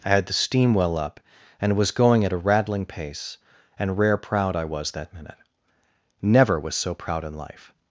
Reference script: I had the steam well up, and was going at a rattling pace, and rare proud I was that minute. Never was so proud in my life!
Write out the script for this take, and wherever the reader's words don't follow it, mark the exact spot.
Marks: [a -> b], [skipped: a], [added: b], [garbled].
I had the steam well up, and was going at a rattling pace, and rare proud I was that minute. Never was so proud in [skipped: my] life!